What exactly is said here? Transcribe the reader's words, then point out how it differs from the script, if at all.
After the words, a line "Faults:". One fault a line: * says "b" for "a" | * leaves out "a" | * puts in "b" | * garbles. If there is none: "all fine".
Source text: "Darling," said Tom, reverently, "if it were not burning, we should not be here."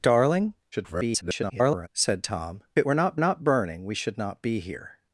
"Darling," [garbled] said Tom, it were not not burning, we should not be here."
Faults:
* garbles
* leaves out "reverently if"
* puts in "not"